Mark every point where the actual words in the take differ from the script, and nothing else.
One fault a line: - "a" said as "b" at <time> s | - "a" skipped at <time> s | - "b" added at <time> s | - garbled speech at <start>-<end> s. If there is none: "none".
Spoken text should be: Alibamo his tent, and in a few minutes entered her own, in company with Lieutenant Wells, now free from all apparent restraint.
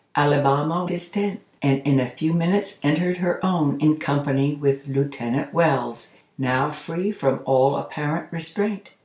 none